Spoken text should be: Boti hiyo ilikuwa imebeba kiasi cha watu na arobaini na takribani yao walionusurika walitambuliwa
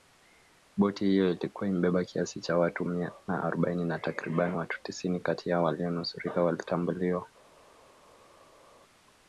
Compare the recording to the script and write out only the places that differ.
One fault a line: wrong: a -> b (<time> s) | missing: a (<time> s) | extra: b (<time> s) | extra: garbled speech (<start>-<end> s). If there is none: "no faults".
extra: mia (2.9 s)
extra: watu tisini kati (4.6 s)